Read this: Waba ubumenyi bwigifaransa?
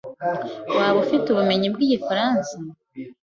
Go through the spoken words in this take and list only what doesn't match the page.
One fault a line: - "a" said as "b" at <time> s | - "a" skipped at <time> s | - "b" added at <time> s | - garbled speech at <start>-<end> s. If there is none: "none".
- "ufite" added at 1.0 s